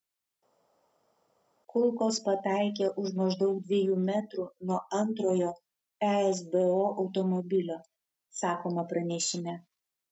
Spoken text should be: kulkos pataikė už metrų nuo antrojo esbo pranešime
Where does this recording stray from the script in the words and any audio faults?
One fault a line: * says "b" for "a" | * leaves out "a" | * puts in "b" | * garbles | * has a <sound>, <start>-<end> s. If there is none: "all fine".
* puts in "maždaug dviejų"
* puts in "automobilio sakoma"